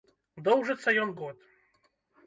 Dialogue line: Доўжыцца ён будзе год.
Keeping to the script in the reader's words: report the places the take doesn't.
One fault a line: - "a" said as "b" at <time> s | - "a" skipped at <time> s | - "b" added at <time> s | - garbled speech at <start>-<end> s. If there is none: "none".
- "будзе" skipped at 1.1 s